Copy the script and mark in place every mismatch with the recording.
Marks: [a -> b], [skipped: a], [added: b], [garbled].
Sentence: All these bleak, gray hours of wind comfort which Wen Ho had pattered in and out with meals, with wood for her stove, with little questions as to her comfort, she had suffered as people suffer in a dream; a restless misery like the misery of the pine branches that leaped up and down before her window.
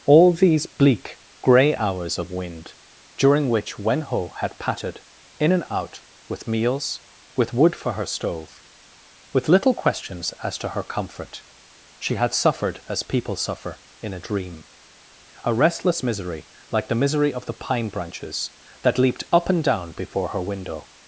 All these bleak, gray hours of wind [comfort -> during] which Wen Ho had pattered in and out with meals, with wood for her stove, with little questions as to her comfort, she had suffered as people suffer in a dream; a restless misery like the misery of the pine branches that leaped up and down before her window.